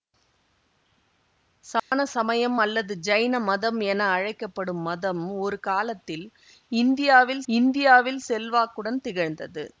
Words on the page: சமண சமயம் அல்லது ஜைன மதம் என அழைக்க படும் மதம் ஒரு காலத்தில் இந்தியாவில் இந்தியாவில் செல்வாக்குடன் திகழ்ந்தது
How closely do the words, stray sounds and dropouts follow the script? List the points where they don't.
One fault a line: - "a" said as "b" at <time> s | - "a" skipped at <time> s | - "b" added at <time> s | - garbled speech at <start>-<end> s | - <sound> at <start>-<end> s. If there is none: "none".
- dropout at 1.8-1.9 s